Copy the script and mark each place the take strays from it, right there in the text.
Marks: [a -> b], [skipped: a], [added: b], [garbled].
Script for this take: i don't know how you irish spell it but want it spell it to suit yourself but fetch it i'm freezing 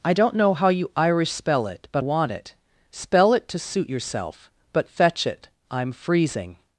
i don't know how you irish spell it but want it spell it to suit yourself but fetch it i'm freezing